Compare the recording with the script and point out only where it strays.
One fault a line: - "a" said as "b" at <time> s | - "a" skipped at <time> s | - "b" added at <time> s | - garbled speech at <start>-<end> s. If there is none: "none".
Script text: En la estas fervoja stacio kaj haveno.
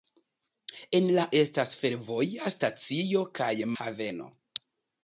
none